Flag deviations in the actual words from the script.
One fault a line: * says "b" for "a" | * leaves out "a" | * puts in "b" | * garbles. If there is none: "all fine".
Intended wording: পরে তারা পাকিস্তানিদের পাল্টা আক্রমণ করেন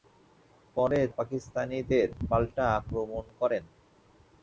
* leaves out "তারা"